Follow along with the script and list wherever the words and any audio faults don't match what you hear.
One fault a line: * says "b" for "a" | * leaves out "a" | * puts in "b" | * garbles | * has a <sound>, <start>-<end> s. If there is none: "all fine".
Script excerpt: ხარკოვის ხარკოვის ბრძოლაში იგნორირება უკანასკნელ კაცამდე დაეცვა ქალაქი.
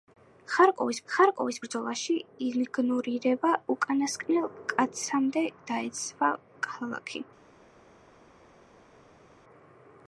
all fine